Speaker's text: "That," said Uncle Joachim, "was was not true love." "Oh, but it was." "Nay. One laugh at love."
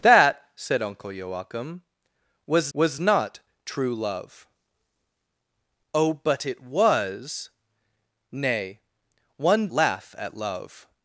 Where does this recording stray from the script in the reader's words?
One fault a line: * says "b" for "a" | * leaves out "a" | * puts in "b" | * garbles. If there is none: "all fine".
all fine